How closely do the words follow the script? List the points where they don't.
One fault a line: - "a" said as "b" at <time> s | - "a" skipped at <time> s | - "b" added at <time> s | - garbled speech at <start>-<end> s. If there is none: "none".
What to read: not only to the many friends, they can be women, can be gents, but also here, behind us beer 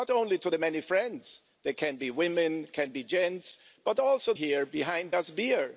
none